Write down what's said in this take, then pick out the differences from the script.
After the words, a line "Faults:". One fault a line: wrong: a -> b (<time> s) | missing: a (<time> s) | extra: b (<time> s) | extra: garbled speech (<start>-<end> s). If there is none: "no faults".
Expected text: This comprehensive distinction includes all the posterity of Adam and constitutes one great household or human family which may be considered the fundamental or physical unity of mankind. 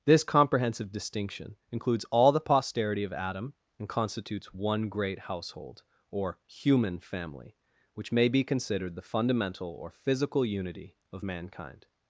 This comprehensive distinction includes all the posterity of Adam and constitutes one great household or human family which may be considered the fundamental or physical unity of mankind.
Faults:
no faults